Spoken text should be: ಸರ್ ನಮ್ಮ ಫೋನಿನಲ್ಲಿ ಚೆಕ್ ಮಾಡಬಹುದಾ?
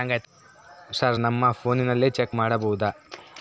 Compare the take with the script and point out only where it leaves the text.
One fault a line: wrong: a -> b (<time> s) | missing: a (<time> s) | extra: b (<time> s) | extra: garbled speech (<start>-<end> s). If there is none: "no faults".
no faults